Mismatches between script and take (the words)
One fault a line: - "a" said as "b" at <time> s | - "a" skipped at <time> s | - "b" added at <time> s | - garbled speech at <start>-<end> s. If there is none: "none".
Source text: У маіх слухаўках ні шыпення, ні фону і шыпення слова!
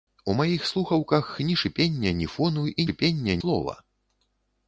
none